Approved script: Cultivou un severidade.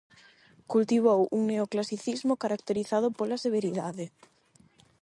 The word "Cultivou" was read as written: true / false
true